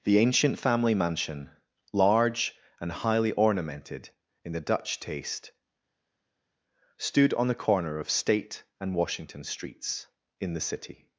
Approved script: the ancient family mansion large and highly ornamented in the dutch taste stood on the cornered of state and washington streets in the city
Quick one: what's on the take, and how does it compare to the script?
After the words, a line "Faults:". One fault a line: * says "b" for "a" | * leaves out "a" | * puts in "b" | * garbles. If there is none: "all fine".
the ancient family mansion large and highly ornamented in the dutch taste stood on the corner of state and washington streets in the city
Faults:
* says "corner" for "cornered"